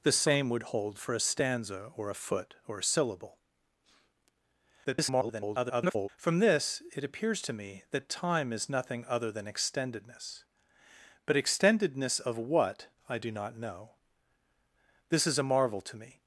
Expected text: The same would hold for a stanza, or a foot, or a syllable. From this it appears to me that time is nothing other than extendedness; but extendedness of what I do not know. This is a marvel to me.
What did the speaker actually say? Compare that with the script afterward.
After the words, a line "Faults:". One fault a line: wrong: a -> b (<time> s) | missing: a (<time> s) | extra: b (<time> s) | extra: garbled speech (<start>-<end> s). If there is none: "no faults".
The same would hold for a stanza, or a foot, or a syllable. [garbled] From this it appears to me that time is nothing other than extendedness; but extendedness of what I do not know. This is a marvel to me.
Faults:
extra: garbled speech (4.8-6.1 s)